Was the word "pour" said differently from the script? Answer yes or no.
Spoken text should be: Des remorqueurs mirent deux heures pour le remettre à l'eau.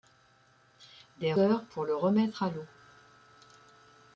no